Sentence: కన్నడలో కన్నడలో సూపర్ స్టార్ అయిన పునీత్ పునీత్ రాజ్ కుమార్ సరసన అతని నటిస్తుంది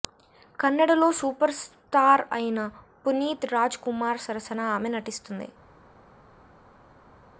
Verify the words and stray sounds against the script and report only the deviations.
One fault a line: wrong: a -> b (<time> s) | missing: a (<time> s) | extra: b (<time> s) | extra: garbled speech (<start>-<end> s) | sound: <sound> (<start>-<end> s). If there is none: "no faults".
missing: కన్నడలో (1.1 s)
missing: పునీత్ (3.5 s)
wrong: అతని -> ఆమె (4.7 s)